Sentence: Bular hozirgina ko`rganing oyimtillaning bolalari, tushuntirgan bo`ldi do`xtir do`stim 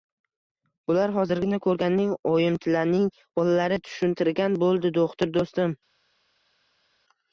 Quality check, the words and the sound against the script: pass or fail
pass